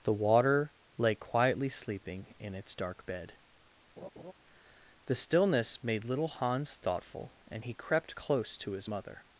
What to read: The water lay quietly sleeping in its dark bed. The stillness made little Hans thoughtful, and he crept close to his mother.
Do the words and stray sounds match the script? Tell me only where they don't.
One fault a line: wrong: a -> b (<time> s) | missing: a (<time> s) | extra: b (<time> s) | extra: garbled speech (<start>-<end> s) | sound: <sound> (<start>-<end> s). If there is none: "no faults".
sound: laugh (4.0-4.3 s)